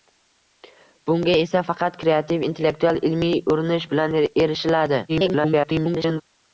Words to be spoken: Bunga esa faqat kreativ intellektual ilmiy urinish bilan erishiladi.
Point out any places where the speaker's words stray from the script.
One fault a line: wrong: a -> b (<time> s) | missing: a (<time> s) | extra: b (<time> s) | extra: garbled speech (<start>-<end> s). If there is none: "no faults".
extra: garbled speech (5.1-6.2 s)